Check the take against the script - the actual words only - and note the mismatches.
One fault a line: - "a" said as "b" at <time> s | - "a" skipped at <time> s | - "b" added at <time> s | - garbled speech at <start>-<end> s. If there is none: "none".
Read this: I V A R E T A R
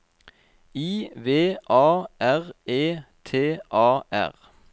none